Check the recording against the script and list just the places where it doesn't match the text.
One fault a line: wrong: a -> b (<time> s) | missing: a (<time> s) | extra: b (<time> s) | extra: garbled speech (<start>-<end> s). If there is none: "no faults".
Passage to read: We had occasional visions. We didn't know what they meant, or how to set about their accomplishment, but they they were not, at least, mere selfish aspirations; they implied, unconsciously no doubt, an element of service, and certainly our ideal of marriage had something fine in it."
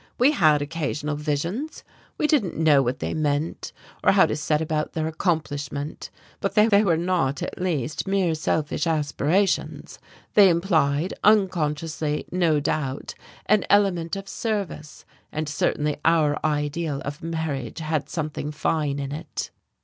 no faults